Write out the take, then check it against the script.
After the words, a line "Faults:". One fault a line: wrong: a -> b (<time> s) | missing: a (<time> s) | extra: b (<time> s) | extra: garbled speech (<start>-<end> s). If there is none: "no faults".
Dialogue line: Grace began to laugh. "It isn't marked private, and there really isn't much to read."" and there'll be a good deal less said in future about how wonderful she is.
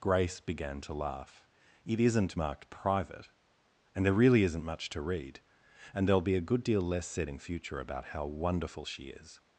Grace began to laugh. "It isn't marked private, and there really isn't much to read."" and there'll be a good deal less said in future about how wonderful she is.
Faults:
no faults